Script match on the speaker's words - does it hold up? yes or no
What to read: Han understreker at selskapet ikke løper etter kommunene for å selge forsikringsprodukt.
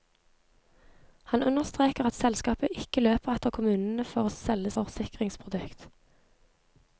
yes